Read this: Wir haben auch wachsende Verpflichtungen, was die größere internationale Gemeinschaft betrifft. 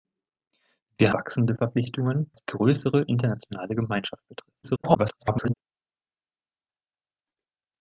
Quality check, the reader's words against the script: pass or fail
fail